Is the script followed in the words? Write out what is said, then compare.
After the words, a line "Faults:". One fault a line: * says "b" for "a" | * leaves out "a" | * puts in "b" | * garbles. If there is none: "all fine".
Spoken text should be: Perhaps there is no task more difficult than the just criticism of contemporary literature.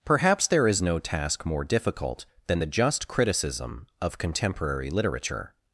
Perhaps there is no task more difficult than the just criticism of contemporary literature.
Faults:
all fine